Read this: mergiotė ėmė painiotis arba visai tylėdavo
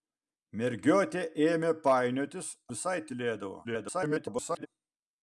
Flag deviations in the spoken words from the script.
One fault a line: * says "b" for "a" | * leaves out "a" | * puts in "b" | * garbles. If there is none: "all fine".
* leaves out "arba"
* garbles